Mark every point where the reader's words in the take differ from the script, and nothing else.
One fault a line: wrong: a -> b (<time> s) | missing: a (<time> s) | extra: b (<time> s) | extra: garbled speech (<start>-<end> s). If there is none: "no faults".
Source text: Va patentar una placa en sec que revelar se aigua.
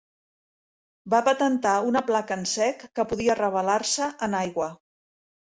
extra: podia (3.1 s)
extra: en (4.3 s)